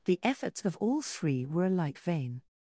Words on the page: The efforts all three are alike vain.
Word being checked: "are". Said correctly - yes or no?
no